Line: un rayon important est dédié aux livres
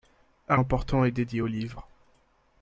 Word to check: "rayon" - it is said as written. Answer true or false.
false